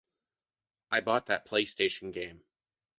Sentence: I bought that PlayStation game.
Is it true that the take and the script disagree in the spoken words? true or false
false